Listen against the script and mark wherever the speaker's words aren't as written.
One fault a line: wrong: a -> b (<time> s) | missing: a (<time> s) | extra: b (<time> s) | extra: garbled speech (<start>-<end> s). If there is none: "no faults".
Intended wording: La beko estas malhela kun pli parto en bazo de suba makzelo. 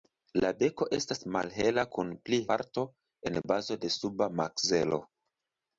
no faults